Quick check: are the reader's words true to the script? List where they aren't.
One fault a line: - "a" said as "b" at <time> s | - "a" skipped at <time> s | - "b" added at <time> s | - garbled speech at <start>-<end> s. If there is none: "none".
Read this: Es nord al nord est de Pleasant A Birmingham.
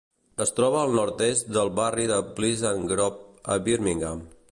- "nord" said as "troba" at 0.6 s
- "del barri" added at 1.6 s
- "Grove" added at 2.9 s